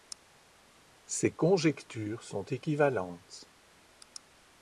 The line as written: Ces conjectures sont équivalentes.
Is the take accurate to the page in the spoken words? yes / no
yes